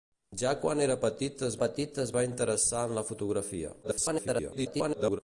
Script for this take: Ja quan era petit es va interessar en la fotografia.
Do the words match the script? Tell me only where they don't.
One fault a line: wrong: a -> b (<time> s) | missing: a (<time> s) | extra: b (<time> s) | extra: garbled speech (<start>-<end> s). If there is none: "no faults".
extra: petit es (1.6 s)
extra: garbled speech (3.8-5.2 s)